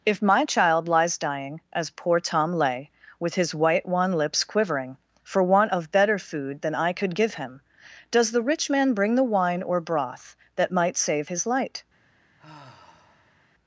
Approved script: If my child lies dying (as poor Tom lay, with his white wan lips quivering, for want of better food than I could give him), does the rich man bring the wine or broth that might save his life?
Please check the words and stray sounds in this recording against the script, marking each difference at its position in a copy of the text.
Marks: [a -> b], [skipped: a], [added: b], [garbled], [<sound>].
If my child lies dying (as poor Tom lay, with his white wan lips quivering, for want of better food than I could give him), does the rich man bring the wine or broth that might save his [life? -> light] [sigh]